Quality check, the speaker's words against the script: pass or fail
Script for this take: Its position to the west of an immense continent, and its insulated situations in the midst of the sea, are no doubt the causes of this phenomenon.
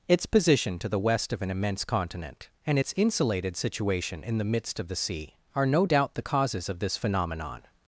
fail